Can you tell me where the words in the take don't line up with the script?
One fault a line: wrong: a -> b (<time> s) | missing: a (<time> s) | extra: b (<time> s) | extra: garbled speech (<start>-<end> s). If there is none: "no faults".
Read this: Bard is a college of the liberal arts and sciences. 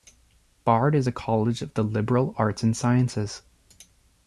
no faults